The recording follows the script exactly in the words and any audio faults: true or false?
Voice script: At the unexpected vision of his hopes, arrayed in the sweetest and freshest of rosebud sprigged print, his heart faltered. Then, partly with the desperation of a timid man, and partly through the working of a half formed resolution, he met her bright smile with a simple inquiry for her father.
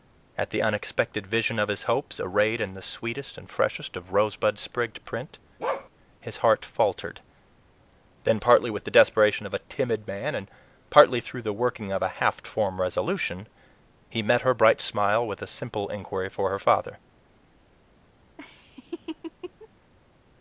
false